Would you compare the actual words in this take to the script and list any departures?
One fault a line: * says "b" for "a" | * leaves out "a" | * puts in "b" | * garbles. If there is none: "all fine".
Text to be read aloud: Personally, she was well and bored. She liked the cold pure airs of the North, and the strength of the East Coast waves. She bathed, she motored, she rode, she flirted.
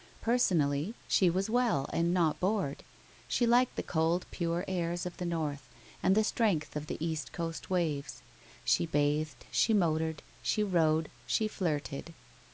* puts in "not"